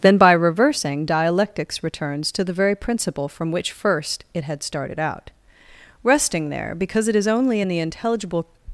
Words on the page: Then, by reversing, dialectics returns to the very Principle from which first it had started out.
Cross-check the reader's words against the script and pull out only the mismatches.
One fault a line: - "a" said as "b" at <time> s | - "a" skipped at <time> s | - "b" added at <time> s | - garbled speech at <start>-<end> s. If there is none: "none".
- "Resting there because it is only in the intelligible" added at 6.0 s